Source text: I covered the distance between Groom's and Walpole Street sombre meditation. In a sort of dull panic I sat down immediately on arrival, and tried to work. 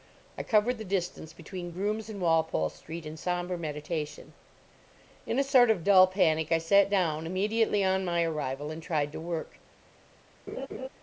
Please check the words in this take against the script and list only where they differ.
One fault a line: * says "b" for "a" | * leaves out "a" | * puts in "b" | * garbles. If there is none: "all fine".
* puts in "in"
* puts in "my"